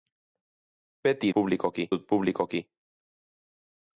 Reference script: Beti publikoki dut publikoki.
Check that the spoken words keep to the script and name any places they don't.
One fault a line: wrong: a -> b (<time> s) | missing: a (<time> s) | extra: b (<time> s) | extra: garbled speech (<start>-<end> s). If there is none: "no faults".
no faults